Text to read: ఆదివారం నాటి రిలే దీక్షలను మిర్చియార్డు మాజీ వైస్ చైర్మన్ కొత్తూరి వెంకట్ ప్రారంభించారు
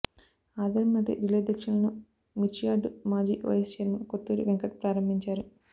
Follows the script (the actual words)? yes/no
yes